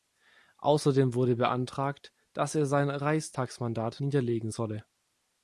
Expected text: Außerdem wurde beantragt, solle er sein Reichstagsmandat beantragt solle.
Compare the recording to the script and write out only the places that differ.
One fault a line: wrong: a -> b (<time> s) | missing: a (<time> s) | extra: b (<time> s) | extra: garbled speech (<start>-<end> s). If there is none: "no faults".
wrong: solle -> dass (2.3 s)
wrong: beantragt -> niederlegen (4.0 s)